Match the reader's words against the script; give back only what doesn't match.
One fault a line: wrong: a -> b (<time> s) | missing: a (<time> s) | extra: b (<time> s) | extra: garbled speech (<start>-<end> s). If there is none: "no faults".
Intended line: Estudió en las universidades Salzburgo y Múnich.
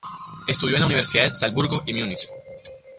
no faults